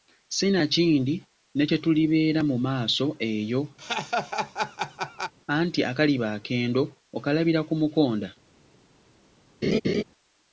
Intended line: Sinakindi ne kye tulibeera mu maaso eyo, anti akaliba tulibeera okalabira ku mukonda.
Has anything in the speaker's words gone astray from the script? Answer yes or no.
yes